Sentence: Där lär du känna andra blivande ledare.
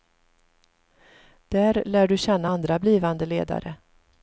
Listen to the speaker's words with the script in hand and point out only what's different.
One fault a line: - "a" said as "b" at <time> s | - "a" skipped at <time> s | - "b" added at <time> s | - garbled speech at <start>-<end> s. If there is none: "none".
none